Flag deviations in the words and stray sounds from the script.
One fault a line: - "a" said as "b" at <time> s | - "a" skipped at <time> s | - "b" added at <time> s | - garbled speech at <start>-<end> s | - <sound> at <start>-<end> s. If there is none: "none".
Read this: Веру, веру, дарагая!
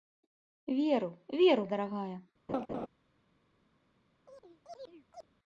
- laugh at 2.5-2.9 s
- chirp at 4.2-5.3 s